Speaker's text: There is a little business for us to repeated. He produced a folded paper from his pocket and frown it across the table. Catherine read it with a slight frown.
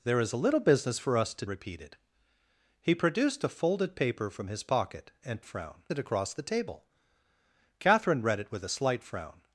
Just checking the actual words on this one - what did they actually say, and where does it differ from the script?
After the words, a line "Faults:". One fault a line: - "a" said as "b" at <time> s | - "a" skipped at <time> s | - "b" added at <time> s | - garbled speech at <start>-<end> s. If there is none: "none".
There is a little business for us to repeated. He produced a folded paper from his pocket and frown it across the table. Catherine read it with a slight frown.
Faults:
none